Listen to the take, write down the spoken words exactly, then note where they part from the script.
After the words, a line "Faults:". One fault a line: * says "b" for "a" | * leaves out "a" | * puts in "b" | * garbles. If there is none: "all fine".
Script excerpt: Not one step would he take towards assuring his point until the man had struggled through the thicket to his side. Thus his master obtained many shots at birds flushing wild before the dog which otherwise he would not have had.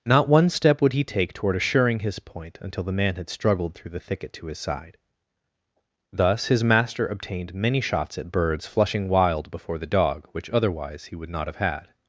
Not one step would he take toward assuring his point until the man had struggled through the thicket to his side. Thus his master obtained many shots at birds flushing wild before the dog which otherwise he would not have had.
Faults:
* says "toward" for "towards"